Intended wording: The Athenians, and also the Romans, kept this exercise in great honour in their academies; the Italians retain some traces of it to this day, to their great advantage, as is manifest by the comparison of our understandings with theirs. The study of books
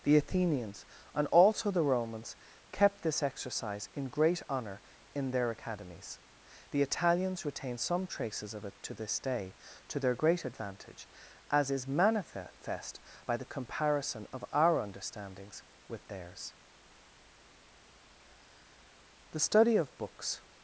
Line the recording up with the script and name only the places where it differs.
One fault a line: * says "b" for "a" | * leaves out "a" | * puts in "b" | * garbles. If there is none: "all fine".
all fine